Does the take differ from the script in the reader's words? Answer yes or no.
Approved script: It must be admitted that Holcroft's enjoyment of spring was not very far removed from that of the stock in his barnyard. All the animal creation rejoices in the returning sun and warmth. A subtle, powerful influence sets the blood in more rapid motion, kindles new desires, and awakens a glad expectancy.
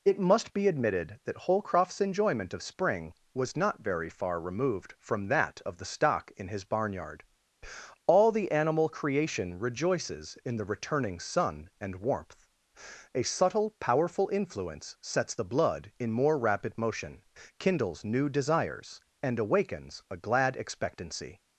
no